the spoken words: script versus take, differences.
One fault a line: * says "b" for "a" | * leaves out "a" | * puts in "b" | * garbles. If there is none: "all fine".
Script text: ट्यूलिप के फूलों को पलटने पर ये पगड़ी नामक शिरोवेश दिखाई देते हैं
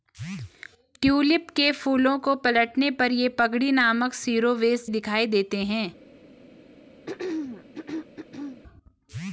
all fine